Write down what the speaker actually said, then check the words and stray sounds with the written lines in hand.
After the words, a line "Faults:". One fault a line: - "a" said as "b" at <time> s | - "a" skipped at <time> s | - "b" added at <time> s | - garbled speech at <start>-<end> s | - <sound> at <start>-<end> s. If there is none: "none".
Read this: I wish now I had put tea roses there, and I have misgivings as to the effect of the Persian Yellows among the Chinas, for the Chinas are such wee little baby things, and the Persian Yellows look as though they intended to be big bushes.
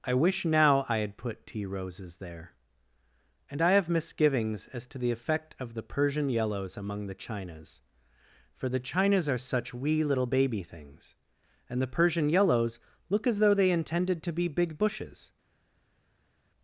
I wish now I had put tea roses there, and I have misgivings as to the effect of the Persian Yellows among the Chinas, for the Chinas are such wee little baby things, and the Persian Yellows look as though they intended to be big bushes.
Faults:
none